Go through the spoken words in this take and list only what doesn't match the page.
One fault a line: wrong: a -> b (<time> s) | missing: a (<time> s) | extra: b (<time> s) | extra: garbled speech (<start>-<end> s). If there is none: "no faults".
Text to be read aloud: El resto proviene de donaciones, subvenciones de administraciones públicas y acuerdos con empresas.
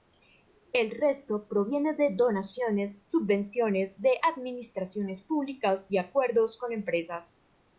no faults